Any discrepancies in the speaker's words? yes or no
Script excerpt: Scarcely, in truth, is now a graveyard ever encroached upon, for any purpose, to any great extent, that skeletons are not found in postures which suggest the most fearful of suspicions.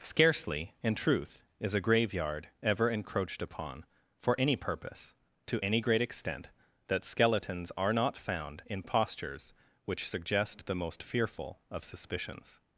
yes